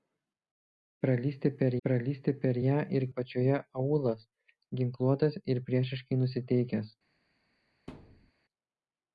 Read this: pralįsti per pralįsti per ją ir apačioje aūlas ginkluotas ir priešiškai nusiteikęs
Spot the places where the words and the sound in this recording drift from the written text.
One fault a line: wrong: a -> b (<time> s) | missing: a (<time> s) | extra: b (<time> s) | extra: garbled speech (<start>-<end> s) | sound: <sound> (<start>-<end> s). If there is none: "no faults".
sound: thud (7.9-8.3 s)